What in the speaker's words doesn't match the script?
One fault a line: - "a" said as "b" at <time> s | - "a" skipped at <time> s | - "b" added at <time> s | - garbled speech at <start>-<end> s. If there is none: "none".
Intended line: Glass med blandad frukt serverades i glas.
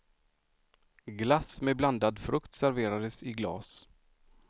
none